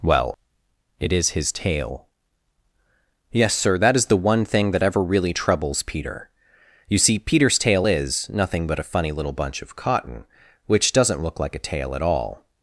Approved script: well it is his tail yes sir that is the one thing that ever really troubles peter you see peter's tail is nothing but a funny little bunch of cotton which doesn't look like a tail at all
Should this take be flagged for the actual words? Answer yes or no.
no